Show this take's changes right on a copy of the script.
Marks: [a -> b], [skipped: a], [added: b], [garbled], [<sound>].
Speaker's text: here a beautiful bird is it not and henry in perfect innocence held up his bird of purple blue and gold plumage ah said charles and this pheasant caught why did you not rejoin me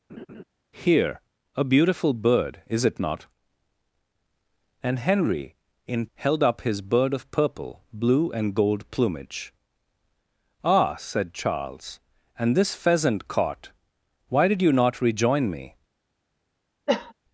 [laugh] here a beautiful bird is it not and henry in [skipped: perfect innocence] held up his bird of purple blue and gold plumage ah said charles and this pheasant caught why did you not rejoin me [cough]